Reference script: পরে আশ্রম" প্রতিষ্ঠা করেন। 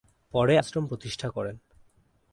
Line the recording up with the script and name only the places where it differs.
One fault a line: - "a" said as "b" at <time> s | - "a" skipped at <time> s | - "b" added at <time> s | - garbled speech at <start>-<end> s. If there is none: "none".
none